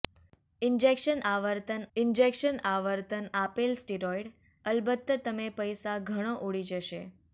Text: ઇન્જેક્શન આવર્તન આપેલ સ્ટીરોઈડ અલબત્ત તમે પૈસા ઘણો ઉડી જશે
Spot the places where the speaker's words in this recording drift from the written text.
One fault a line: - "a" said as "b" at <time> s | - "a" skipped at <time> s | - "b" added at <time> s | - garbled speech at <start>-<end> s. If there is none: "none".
- "ઇન્જેક્શન આવર્તન" added at 2.0 s